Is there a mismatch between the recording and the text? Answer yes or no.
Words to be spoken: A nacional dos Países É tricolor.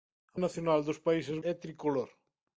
no